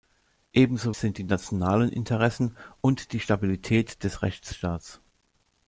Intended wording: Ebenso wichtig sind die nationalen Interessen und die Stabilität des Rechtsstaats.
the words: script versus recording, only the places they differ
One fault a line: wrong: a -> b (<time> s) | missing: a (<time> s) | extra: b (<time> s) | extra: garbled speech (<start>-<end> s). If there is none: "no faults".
missing: wichtig (0.9 s)